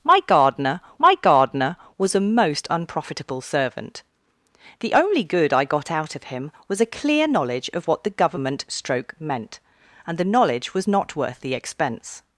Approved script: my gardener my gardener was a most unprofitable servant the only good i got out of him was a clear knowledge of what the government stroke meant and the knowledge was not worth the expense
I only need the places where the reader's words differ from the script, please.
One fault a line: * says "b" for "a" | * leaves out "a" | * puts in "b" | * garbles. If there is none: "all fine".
all fine